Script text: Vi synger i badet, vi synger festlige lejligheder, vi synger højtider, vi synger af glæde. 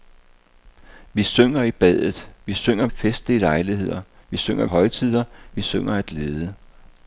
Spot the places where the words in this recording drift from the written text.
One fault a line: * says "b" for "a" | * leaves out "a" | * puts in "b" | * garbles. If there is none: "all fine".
all fine